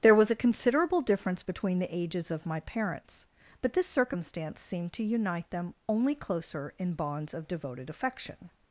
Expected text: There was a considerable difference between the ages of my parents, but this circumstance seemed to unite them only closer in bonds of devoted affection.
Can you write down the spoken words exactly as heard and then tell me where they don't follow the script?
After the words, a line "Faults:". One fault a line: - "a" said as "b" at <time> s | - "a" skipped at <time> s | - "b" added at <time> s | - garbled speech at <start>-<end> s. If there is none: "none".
There was a considerable difference between the ages of my parents, but this circumstance seemed to unite them only closer in bonds of devoted affection.
Faults:
none